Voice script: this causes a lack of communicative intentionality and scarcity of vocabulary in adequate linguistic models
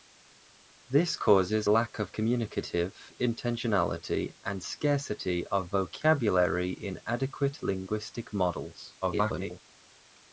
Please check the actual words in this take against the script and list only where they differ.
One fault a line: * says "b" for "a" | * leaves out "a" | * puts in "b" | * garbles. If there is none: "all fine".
* leaves out "a"
* garbles